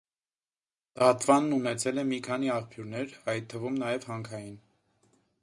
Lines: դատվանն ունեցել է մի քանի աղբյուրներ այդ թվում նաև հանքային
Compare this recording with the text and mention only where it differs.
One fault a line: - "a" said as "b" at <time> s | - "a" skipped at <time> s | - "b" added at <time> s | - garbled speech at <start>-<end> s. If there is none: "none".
none